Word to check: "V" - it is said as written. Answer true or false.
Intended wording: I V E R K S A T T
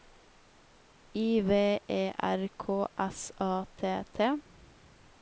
true